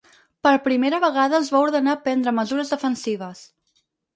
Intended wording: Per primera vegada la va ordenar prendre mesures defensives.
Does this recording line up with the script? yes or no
no